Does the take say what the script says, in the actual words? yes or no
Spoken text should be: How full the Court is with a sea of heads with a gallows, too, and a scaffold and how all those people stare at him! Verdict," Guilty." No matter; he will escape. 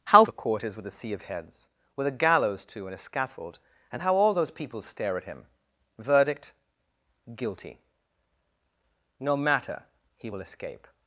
no